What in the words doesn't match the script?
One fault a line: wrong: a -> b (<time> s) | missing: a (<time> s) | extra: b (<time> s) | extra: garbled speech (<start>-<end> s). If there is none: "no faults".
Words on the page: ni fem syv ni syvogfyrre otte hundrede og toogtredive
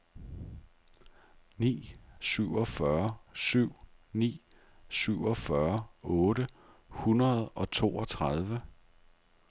wrong: fem -> syvogfyrre (2.2 s)